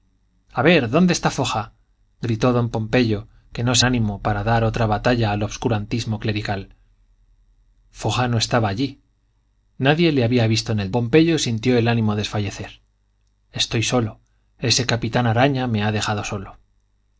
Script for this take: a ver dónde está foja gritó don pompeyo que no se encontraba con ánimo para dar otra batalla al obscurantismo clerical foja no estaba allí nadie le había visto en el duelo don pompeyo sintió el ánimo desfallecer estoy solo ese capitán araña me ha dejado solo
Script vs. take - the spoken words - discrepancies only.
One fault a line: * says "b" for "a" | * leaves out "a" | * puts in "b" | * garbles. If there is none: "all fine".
* leaves out "encontraba con"
* leaves out "duelo don"